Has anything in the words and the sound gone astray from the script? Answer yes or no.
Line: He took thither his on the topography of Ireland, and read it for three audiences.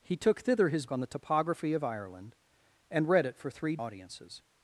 no